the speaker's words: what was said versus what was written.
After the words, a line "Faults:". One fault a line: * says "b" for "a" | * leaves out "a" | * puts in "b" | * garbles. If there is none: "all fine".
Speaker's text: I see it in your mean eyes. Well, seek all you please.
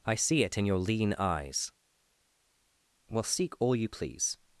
I see it in your lean eyes. Well, seek all you please.
Faults:
* says "lean" for "mean"